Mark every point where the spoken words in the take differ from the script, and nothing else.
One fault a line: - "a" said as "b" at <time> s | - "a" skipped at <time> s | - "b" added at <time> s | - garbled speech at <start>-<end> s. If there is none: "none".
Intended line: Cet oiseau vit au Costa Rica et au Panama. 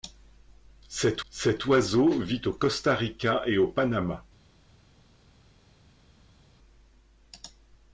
- "cet" added at 1.3 s